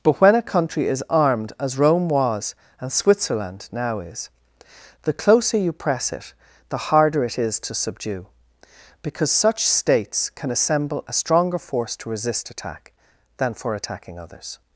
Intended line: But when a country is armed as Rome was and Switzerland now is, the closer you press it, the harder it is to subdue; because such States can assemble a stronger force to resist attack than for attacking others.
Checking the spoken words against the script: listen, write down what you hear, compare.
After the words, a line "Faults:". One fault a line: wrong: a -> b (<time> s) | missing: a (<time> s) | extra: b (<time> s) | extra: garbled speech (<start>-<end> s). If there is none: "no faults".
But when a country is armed as Rome was and Switzerland now is, the closer you press it, the harder it is to subdue; because such States can assemble a stronger force to resist attack than for attacking others.
Faults:
no faults